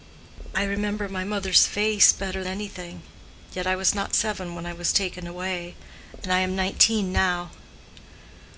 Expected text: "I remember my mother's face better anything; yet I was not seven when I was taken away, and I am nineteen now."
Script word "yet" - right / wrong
right